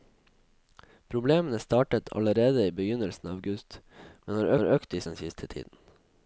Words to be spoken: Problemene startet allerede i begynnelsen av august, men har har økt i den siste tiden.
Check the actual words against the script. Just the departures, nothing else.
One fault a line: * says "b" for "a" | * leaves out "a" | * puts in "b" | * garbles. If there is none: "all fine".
all fine